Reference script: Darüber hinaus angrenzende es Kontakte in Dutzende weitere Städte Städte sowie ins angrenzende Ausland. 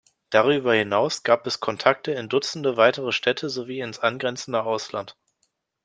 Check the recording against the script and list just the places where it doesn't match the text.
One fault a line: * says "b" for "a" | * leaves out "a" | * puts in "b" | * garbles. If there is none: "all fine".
* says "gab" for "angrenzende"
* leaves out "Städte"